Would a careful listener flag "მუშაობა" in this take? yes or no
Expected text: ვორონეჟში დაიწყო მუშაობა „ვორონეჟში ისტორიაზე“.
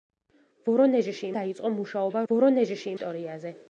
no